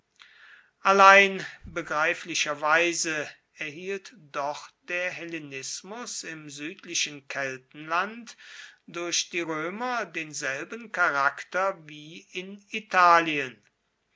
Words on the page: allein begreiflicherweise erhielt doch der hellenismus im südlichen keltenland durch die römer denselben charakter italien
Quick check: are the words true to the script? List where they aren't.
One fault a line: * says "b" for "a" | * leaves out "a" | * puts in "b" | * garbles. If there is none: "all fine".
* puts in "wie in"